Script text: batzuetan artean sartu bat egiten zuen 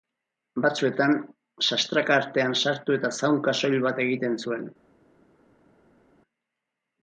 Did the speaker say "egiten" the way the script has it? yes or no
yes